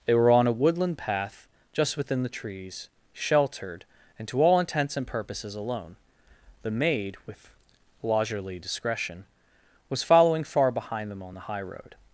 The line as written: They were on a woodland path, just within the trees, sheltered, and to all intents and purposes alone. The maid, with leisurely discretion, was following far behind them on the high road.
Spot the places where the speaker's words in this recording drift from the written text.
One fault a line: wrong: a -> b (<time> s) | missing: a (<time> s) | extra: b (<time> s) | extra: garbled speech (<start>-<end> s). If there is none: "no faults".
no faults